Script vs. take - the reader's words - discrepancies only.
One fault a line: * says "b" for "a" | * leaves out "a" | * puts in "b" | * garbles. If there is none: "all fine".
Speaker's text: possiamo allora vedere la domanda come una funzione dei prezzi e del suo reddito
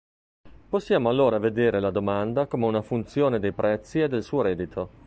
all fine